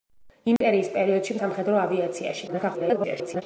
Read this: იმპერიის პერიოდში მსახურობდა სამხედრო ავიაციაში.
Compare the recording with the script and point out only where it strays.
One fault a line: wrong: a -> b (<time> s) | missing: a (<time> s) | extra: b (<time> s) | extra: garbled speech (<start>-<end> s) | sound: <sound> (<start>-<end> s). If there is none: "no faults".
sound: dropout (0.6-0.6 s)
missing: მსახურობდა (1.4 s)
extra: garbled speech (2.5-3.4 s)